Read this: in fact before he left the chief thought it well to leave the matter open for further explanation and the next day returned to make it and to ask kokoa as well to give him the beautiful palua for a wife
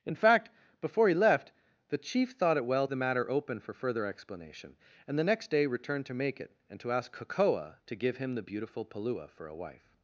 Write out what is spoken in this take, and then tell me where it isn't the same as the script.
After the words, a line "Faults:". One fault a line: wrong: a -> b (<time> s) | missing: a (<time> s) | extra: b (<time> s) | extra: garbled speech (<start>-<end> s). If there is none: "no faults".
in fact before he left the chief thought it well the matter open for further explanation and the next day returned to make it and to ask kokoa to give him the beautiful palua for a wife
Faults:
missing: to leave (2.9 s)
missing: as well (7.7 s)